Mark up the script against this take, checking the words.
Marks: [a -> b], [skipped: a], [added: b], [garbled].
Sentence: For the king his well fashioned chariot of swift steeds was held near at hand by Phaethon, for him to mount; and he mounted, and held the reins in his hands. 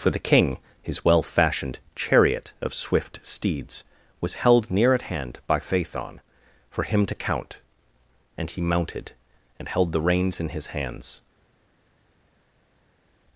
For the king his well fashioned chariot of swift steeds was held near at hand by Phaethon, for him to [mount; -> count] and he mounted, and held the reins in his hands.